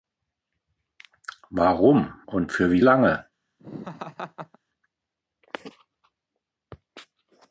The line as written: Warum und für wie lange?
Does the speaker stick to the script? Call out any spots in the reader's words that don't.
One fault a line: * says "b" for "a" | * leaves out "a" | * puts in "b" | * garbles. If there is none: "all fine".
all fine